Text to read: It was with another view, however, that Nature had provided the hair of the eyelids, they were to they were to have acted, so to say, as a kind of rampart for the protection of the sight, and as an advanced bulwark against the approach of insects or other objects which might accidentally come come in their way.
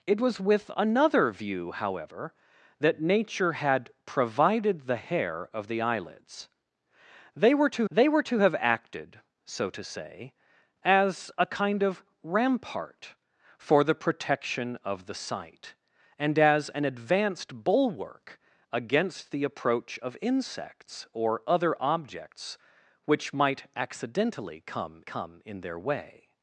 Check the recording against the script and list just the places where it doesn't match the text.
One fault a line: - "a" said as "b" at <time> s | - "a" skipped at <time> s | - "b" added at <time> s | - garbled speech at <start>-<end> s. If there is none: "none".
none